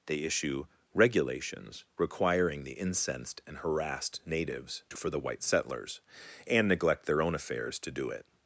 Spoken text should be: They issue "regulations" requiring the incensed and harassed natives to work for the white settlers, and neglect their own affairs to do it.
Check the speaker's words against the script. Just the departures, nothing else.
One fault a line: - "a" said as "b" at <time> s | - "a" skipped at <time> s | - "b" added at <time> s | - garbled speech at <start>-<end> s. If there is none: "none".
- "work" skipped at 5.0 s